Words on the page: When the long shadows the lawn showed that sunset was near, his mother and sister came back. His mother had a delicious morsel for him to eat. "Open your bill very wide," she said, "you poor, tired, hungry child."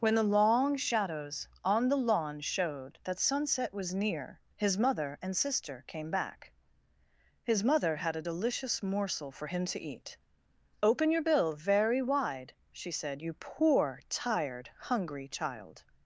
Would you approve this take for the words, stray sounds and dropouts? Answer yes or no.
no